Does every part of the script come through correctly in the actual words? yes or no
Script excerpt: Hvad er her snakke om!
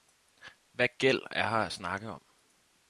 no